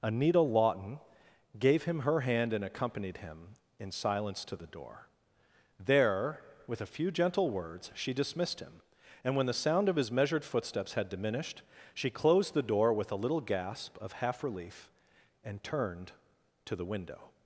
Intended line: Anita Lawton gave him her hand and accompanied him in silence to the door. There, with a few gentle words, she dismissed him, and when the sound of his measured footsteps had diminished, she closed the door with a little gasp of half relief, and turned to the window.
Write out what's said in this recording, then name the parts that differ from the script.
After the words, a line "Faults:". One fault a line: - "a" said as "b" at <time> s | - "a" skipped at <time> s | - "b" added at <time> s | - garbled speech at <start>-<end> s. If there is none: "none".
Anita Lawton gave him her hand and accompanied him in silence to the door. There, with a few gentle words, she dismissed him, and when the sound of his measured footsteps had diminished, she closed the door with a little gasp of half relief, and turned to the window.
Faults:
none